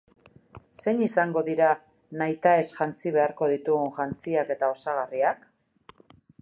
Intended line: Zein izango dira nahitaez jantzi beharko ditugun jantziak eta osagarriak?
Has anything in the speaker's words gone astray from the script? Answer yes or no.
no